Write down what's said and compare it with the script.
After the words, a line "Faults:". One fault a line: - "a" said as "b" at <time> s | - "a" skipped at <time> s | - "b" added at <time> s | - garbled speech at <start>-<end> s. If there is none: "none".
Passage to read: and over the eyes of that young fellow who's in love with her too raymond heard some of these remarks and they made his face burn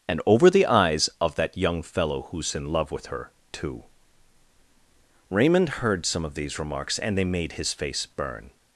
and over the eyes of that young fellow who's in love with her too raymond heard some of these remarks and they made his face burn
Faults:
none